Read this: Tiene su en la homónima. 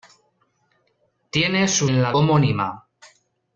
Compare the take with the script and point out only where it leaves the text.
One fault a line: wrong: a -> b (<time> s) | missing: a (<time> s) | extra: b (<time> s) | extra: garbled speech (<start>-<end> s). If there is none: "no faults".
no faults